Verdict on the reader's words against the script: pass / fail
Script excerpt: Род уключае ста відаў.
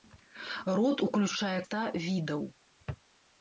pass